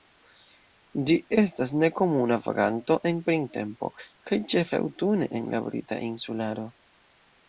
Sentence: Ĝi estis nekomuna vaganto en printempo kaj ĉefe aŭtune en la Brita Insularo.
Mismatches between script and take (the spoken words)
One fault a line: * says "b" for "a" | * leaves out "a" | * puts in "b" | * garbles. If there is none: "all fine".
* says "estas" for "estis"